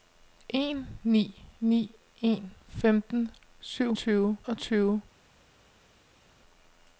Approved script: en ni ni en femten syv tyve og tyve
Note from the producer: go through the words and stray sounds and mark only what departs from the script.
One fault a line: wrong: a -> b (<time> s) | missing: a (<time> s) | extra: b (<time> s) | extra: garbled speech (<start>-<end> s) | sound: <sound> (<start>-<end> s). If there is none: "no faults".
no faults